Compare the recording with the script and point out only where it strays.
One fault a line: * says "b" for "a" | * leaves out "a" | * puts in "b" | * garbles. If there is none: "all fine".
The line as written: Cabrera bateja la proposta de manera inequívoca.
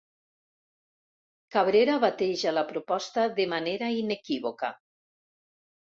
all fine